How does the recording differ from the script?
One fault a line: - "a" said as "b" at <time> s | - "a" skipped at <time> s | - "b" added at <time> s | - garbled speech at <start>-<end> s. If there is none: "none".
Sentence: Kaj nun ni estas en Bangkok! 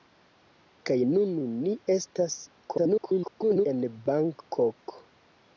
- garbled speech at 2.7-3.7 s